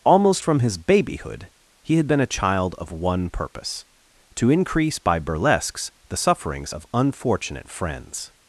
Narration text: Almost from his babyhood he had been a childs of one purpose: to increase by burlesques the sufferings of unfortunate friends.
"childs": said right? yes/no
no